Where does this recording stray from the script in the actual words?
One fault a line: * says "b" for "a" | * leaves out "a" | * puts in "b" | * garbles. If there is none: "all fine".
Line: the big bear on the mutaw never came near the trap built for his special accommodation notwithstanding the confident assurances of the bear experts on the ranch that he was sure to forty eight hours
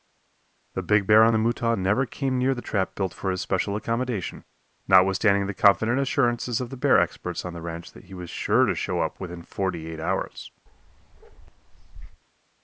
* puts in "show up within"